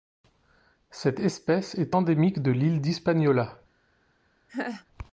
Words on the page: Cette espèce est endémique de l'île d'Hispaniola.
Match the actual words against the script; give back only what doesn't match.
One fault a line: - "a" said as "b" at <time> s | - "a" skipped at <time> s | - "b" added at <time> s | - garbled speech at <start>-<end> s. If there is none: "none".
none